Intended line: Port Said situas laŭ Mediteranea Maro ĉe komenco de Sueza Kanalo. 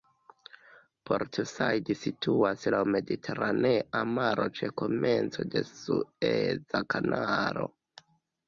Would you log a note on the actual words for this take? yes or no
no